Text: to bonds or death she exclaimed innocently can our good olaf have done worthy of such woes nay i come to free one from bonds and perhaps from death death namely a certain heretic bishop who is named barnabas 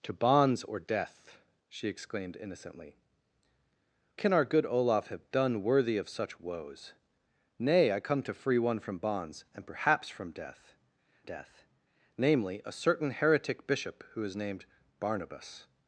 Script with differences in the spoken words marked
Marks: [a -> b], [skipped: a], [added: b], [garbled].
to bonds or death she exclaimed innocently can our good olaf have done worthy of such woes nay i come to free one from bonds and perhaps from death death namely a certain heretic bishop who is named barnabas